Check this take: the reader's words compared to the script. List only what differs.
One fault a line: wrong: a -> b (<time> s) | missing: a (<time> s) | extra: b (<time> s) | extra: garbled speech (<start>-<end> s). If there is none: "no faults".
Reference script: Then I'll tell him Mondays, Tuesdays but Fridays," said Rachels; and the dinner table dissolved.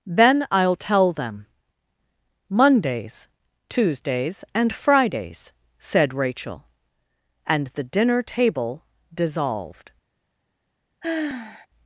wrong: him -> them (1.1 s)
wrong: but -> and (4.5 s)
wrong: Rachels -> Rachel (6.1 s)